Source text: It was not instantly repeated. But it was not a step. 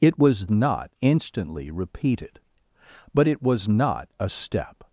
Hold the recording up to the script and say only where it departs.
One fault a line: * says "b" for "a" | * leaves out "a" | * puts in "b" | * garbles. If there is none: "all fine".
all fine